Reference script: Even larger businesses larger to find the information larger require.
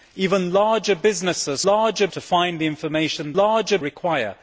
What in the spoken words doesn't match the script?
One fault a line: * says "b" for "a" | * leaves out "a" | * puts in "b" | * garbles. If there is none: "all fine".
all fine